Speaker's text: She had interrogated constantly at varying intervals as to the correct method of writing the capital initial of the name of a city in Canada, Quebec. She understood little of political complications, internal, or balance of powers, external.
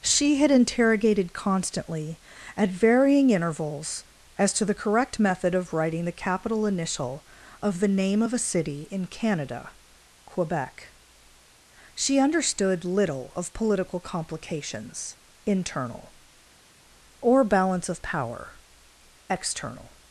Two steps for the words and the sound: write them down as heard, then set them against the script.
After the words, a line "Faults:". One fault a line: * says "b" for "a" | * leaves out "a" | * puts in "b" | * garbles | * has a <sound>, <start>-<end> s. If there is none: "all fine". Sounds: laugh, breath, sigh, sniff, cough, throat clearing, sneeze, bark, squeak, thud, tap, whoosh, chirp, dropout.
She had interrogated constantly at varying intervals as to the correct method of writing the capital initial of the name of a city in Canada, Quebec. She understood little of political complications, internal, or balance of power, external.
Faults:
* says "power" for "powers"